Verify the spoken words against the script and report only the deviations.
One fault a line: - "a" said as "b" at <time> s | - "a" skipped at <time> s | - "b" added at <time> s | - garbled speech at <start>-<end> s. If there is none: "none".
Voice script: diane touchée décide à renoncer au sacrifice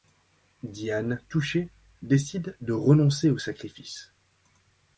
- "à" said as "de" at 2.6 s